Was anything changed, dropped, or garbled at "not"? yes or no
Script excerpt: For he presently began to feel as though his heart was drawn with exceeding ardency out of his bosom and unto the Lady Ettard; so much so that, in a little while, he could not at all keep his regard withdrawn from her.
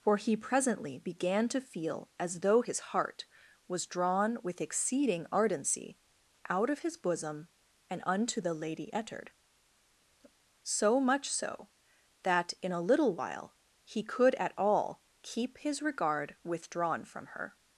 yes